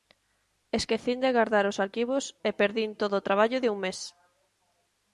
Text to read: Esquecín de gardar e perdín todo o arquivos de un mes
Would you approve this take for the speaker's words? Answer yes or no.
no